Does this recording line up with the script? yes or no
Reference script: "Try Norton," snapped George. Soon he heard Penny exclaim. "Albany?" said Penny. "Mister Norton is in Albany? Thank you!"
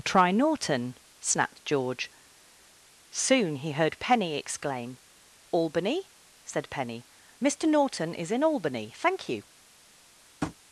yes